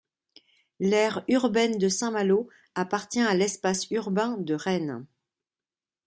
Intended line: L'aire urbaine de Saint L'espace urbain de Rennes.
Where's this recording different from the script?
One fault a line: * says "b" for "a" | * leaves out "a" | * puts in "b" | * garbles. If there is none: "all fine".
* puts in "Malo appartient à"